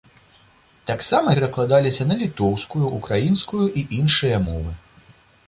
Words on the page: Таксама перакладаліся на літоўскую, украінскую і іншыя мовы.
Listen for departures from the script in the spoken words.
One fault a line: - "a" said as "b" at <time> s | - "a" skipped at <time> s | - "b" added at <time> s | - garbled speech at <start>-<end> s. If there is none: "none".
none